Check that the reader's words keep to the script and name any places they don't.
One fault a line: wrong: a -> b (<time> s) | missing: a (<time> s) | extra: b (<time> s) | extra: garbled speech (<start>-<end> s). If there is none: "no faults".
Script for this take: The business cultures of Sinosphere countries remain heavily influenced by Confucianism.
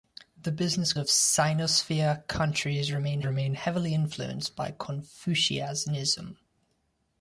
missing: cultures (0.9 s)
extra: remain (3.2 s)